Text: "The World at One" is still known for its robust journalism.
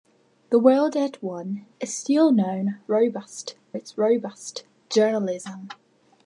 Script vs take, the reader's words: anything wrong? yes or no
yes